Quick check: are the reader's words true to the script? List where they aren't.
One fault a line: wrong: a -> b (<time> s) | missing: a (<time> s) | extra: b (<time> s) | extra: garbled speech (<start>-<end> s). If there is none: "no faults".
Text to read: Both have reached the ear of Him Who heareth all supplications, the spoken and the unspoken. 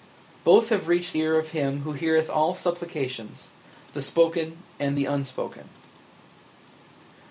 missing: the (1.1 s)